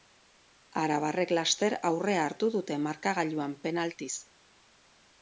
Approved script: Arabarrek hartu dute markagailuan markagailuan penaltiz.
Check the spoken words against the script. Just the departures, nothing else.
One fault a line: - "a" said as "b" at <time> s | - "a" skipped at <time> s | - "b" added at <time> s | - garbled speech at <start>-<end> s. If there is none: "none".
- "laster aurrea" added at 1.4 s
- "markagailuan" skipped at 3.5 s